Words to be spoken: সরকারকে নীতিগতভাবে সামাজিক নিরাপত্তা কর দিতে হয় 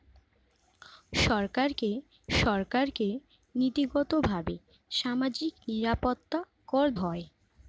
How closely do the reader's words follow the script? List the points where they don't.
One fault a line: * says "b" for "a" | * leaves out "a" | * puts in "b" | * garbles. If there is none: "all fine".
* puts in "সরকারকে"
* leaves out "দিতে"